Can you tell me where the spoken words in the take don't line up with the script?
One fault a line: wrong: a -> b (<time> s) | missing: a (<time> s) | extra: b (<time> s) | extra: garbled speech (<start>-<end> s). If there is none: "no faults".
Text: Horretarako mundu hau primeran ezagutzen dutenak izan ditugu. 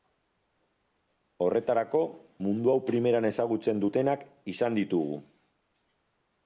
no faults